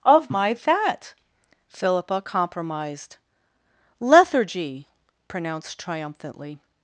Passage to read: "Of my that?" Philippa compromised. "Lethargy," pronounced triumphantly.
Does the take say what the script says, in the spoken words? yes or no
yes